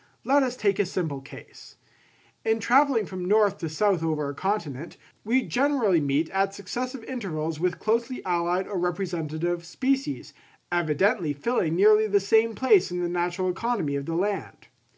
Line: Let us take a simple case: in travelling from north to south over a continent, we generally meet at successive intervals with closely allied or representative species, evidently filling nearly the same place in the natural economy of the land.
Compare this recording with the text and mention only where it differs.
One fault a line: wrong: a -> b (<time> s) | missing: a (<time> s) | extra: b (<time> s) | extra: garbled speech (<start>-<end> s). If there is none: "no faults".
no faults